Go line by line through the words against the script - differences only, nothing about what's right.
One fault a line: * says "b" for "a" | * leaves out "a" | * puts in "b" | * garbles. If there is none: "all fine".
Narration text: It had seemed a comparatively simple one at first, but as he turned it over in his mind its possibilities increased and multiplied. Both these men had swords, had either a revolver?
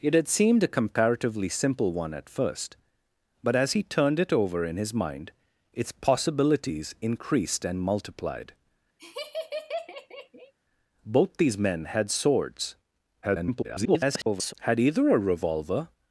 * garbles